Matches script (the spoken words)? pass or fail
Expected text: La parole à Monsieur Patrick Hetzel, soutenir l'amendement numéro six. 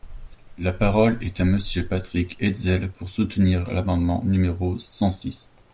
fail